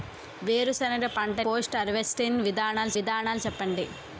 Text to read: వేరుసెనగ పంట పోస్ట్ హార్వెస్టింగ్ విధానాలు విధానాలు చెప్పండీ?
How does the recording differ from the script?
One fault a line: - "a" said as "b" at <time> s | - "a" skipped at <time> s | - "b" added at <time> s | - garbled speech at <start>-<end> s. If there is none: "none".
none